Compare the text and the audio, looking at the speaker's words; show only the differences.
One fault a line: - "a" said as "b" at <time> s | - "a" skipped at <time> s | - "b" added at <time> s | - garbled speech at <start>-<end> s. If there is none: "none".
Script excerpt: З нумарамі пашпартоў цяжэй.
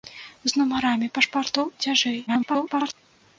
- garbled speech at 2.3-2.9 s